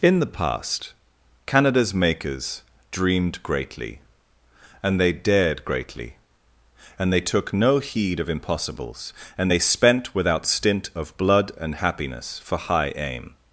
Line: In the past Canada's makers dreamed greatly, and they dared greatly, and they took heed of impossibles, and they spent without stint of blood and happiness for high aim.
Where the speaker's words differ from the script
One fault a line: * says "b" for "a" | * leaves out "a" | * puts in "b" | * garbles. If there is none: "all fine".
* puts in "no"